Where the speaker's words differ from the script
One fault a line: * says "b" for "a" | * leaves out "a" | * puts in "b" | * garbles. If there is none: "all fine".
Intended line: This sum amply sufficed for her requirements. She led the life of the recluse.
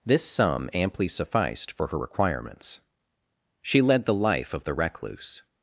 all fine